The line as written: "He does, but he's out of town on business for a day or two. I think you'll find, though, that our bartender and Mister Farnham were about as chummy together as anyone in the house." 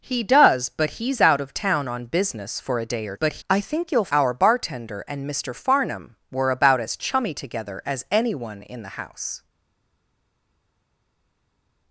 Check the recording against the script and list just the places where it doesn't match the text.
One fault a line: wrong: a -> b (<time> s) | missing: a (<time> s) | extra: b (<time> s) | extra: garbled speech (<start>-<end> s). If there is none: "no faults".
wrong: two -> but (3.1 s)
missing: find though that (4.1 s)